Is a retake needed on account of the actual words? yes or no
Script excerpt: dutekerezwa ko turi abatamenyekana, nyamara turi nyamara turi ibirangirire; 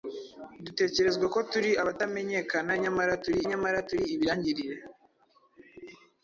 no